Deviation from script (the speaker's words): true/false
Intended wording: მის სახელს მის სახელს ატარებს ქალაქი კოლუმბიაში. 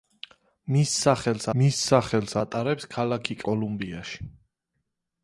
false